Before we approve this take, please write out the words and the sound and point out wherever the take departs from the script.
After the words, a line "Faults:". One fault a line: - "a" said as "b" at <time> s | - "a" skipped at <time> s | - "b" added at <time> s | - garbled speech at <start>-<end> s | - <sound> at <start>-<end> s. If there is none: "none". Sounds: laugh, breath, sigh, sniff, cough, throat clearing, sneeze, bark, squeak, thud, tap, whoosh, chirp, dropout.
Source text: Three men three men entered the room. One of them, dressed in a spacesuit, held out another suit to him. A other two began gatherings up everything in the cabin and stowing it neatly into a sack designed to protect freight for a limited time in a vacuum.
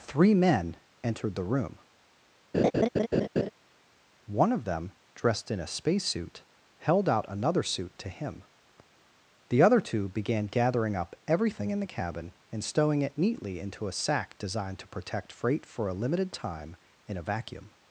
Three men entered the room. One of them, dressed in a spacesuit, held out another suit to him. The other two began gathering up everything in the cabin and stowing it neatly into a sack designed to protect freight for a limited time in a vacuum.
Faults:
- "three men" skipped at 0.8 s
- laugh at 2.5-3.5 s
- "A" said as "The" at 9.5 s
- "gatherings" said as "gathering" at 10.5 s